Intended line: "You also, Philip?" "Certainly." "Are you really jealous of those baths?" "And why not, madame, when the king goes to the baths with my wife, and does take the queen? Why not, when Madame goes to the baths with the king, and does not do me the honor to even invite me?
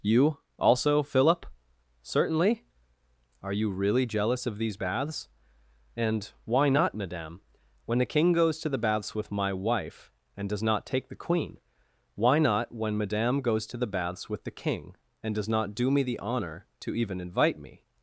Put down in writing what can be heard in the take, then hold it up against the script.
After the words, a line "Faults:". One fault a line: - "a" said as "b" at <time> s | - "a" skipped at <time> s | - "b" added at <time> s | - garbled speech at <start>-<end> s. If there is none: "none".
"You also, Philip?" "Certainly." "Are you really jealous of these baths?" "And why not, madame, when the king goes to the baths with my wife, and does not take the queen? Why not, when Madame goes to the baths with the king, and does not do me the honor to even invite me?
Faults:
- "those" said as "these" at 4.6 s
- "not" added at 10.6 s